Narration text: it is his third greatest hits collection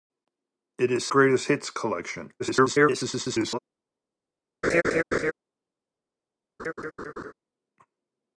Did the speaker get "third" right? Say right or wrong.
wrong